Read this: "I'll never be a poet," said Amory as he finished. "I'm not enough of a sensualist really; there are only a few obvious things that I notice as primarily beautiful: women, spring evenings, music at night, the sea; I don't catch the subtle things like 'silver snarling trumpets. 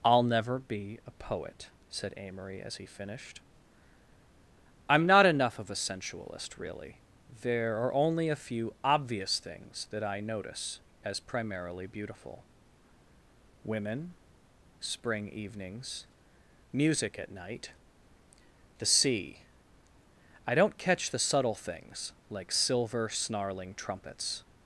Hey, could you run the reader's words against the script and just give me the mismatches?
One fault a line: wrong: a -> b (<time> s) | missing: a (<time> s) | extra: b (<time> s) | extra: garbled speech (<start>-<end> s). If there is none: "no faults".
no faults